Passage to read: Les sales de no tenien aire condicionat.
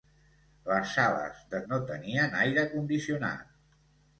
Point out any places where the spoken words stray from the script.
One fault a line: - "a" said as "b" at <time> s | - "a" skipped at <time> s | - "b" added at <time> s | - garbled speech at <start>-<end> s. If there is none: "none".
none